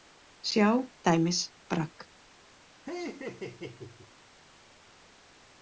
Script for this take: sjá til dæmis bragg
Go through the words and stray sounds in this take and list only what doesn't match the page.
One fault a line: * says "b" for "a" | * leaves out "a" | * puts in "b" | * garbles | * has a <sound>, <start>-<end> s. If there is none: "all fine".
* leaves out "til"
* has a laugh, 2.9-4.1 s